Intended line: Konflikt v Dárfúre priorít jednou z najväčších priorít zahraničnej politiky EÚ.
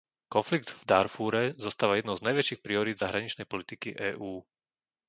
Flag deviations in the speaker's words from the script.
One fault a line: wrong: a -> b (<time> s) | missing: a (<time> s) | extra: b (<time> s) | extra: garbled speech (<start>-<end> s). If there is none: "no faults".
wrong: priorít -> zostáva (1.6 s)